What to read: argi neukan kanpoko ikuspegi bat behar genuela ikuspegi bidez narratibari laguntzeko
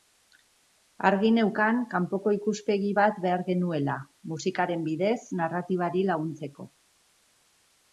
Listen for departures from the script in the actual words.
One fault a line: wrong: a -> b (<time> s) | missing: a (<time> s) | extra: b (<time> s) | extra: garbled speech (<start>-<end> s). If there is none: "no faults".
wrong: ikuspegi -> musikaren (4.3 s)